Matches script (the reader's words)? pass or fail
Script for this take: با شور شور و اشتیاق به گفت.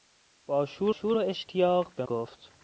pass